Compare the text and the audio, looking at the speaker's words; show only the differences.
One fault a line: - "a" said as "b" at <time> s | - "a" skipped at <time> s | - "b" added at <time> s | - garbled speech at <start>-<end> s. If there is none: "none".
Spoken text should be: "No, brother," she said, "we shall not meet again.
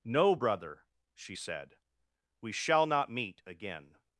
none